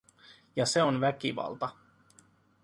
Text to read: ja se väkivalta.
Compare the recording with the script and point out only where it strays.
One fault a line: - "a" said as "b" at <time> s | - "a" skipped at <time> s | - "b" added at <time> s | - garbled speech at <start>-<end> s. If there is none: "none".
- "on" added at 0.8 s